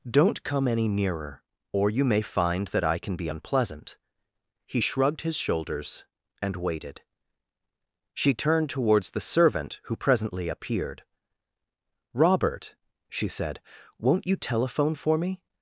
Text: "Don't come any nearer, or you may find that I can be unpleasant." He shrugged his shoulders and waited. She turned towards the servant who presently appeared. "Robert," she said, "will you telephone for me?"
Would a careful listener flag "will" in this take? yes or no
yes